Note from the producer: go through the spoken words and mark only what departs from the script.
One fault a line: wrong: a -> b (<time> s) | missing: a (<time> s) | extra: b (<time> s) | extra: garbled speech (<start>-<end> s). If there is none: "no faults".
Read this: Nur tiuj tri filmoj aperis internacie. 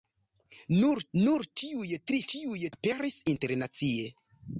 extra: nur (1.2 s)
wrong: filmoj -> tiuj (2.3 s)